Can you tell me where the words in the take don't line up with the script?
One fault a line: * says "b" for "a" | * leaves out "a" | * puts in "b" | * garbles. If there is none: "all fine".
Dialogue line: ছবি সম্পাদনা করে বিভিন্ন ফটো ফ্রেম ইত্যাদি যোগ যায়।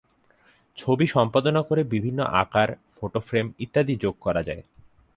* puts in "আকার"
* puts in "করা"